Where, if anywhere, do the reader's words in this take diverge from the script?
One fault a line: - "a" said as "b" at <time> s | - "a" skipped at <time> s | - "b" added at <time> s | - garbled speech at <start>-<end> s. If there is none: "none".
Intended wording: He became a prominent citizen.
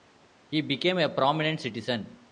none